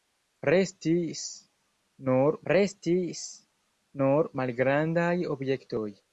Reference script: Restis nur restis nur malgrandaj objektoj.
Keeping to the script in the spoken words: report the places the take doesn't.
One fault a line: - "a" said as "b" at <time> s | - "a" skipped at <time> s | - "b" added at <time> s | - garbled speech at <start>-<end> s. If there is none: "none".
none